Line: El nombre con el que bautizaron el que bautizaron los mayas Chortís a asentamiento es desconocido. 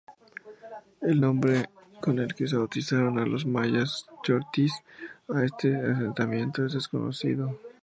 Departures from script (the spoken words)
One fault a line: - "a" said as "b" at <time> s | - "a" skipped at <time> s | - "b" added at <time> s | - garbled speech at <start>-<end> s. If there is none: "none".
- "el que bautizaron" skipped at 3.3 s
- "este" added at 5.4 s